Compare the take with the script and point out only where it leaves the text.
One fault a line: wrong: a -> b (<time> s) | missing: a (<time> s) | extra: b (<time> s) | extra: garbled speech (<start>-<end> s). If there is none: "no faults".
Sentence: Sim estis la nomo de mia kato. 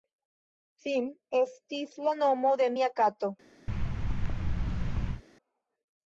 no faults